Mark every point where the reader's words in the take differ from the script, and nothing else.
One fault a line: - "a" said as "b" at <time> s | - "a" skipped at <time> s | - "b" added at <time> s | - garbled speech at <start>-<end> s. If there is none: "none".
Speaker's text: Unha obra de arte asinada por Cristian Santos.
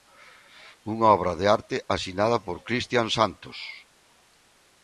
none